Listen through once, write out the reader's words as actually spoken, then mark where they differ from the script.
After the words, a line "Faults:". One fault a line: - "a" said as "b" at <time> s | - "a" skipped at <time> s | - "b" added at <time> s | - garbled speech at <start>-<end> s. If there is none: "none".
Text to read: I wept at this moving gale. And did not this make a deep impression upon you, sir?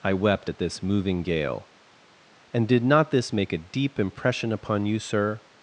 I wept at this moving gale. And did not this make a deep impression upon you, sir?
Faults:
none